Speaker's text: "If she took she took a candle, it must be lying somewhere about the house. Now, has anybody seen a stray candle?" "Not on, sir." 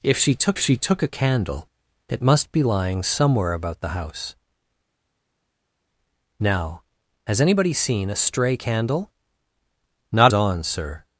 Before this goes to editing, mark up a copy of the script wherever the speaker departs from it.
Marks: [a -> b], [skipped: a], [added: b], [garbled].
"If she took she took a candle, it must be lying somewhere about the house. Now, has anybody seen a stray candle?" "Not on, sir."